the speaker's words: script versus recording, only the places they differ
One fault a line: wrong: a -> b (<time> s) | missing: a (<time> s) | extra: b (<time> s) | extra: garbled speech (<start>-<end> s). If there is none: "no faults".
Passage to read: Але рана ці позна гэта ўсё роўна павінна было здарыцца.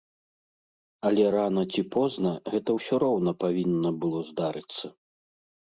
no faults